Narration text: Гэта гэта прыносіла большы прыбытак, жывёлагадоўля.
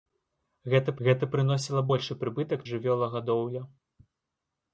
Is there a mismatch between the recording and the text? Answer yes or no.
no